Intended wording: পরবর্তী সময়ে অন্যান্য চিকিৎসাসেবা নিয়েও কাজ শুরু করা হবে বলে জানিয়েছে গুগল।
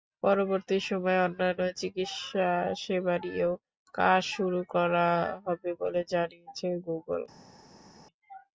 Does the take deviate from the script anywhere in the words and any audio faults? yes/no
no